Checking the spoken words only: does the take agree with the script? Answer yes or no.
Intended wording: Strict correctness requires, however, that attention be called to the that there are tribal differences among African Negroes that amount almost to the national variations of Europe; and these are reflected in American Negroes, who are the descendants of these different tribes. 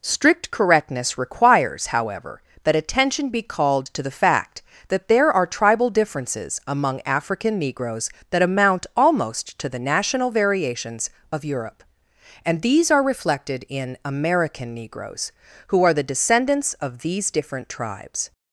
no